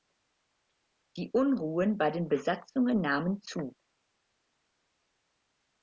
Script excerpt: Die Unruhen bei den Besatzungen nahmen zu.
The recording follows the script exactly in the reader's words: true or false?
true